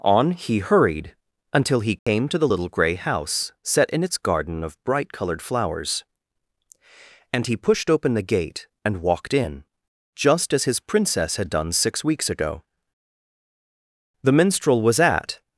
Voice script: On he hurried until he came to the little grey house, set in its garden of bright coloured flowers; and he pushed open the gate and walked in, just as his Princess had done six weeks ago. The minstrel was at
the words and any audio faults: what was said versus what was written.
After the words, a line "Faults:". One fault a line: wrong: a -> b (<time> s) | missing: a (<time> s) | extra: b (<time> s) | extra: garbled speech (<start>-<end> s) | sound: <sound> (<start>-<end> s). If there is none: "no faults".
On he hurried until he came to the little grey house, set in its garden of bright coloured flowers; and he pushed open the gate and walked in, just as his Princess had done six weeks ago. The minstrel was at
Faults:
sound: dropout (2.0-2.1 s)